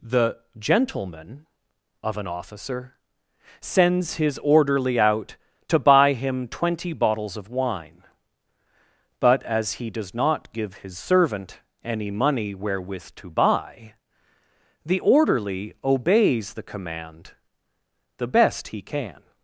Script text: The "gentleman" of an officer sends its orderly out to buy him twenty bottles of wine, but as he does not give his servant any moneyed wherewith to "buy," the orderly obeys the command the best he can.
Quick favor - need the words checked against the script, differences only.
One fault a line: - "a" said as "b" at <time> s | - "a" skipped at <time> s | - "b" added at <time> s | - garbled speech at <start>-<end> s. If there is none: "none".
- "its" said as "his" at 4.2 s
- "moneyed" said as "money" at 12.1 s